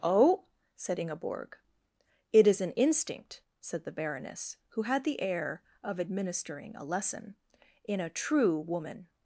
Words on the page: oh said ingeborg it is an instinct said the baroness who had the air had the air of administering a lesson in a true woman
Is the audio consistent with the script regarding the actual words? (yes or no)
no